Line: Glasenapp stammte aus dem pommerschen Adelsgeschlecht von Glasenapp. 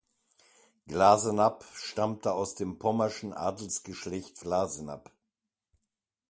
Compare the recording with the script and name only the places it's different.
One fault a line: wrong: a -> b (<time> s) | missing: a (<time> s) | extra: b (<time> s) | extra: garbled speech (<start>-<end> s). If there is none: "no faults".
missing: von (4.4 s)